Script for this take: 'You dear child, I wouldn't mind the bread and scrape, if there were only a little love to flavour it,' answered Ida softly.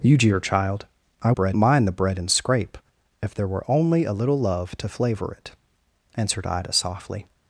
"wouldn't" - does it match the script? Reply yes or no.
no